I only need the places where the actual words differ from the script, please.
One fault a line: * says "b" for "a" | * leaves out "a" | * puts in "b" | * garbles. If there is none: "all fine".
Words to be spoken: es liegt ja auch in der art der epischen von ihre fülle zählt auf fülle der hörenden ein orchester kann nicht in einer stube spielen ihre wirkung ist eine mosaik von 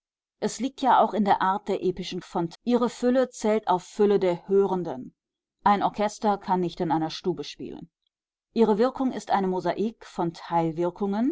all fine